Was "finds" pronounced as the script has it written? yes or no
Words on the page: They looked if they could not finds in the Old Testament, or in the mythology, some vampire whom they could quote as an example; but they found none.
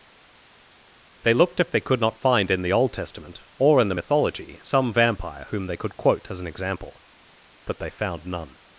no